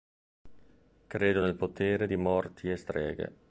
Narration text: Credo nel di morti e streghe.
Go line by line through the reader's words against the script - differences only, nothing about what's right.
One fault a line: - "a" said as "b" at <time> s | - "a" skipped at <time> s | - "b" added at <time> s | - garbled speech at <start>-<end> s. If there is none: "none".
- "potere" added at 1.6 s